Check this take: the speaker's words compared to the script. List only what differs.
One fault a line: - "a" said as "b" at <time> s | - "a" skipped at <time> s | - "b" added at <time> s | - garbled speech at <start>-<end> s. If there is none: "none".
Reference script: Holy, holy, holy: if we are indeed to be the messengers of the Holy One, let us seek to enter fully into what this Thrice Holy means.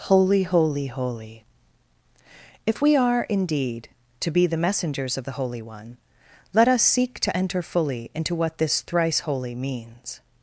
none